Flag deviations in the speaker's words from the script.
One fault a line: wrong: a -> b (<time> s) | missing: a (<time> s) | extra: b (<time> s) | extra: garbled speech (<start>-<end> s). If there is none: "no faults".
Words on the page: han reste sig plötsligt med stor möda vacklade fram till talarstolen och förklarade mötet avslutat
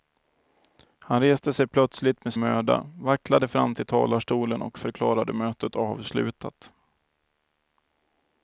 missing: stor (2.3 s)